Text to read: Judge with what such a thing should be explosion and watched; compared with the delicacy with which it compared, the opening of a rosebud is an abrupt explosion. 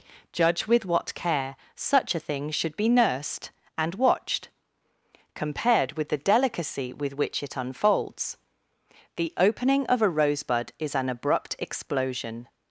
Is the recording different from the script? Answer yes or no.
yes